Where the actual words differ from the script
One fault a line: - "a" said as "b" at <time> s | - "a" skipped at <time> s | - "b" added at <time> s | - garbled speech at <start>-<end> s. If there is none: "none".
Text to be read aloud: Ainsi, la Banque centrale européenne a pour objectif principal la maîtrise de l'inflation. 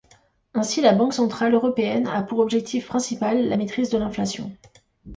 none